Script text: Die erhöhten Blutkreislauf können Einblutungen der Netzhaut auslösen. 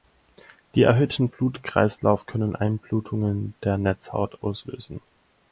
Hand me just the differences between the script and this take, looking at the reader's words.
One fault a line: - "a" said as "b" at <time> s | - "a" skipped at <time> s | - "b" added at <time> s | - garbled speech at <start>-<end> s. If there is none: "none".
none